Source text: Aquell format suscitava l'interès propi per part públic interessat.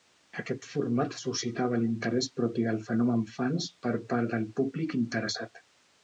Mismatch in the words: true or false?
true